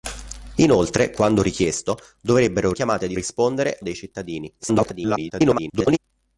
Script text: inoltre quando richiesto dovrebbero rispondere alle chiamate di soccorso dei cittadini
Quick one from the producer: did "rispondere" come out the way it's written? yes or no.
no